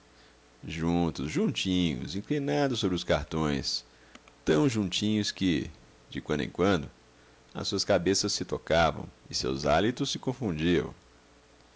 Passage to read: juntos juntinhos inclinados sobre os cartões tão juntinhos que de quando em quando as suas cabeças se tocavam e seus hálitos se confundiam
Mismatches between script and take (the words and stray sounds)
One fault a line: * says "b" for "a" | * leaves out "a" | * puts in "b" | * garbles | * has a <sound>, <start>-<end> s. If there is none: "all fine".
all fine